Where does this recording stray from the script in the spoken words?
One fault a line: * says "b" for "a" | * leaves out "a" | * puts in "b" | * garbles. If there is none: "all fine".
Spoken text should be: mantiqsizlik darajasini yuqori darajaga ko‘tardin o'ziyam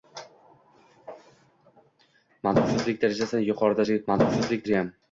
* says "mantiqsizlik" for "ko‘tardin"